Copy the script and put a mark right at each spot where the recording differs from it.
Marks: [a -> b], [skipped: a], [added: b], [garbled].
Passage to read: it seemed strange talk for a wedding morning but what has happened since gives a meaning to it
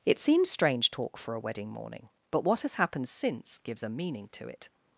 it [seemed -> seems] strange talk for a wedding morning but what has happened since gives a meaning to it